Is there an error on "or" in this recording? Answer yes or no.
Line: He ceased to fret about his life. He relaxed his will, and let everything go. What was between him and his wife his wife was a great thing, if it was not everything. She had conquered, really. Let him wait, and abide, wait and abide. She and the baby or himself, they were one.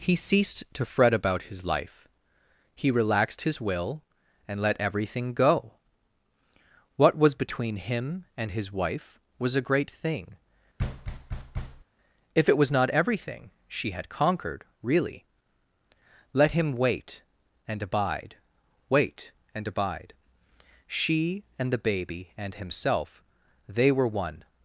yes